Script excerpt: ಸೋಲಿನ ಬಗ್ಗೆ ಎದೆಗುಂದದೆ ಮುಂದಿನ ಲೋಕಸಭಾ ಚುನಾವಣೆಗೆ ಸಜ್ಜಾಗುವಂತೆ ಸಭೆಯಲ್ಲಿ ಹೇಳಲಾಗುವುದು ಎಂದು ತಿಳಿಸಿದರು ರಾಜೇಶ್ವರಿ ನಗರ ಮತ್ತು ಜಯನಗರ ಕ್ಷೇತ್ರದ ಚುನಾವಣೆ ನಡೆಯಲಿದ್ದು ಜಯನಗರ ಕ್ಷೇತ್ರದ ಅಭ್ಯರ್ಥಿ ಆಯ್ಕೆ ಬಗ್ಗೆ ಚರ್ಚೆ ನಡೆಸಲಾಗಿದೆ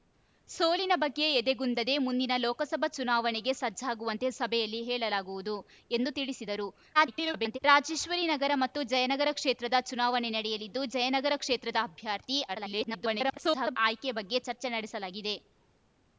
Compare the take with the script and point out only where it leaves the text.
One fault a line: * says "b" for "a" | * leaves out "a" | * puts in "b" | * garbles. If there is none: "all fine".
* garbles
* garbles